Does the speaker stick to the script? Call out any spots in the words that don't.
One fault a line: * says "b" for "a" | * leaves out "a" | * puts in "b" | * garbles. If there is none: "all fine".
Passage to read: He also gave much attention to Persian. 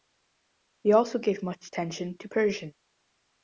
all fine